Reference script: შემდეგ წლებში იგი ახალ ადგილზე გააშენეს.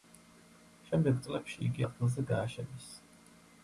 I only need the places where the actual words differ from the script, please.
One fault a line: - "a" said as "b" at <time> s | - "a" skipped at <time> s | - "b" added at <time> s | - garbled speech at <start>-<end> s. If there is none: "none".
- "ახალ" skipped at 1.9 s